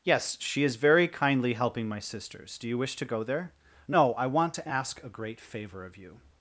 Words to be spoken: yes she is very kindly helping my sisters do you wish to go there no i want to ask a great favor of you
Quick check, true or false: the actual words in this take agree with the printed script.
true